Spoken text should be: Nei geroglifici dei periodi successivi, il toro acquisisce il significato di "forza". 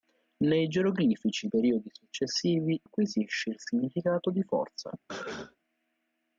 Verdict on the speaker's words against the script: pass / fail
fail